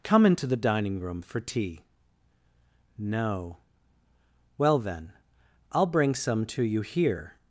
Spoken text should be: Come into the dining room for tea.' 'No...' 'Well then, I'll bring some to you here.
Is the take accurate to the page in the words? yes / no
yes